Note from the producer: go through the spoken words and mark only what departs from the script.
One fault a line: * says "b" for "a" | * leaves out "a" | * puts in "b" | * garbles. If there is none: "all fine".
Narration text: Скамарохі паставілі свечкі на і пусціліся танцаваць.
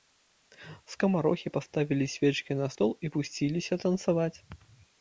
* puts in "стол"